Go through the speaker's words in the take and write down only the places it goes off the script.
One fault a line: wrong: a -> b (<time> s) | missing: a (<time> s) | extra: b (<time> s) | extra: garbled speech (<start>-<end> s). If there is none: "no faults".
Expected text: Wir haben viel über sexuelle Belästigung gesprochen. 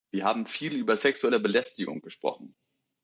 no faults